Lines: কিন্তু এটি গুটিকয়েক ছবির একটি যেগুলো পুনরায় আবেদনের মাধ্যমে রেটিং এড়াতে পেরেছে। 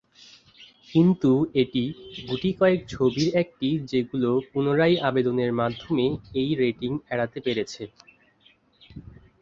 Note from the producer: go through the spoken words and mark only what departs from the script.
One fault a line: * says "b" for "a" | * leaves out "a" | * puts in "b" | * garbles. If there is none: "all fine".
* puts in "এই"